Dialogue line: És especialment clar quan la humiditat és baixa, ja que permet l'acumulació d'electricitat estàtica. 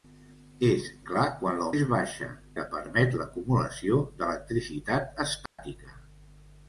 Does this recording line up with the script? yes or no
no